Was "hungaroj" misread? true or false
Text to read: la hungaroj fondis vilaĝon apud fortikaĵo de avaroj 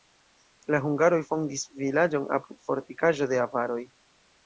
false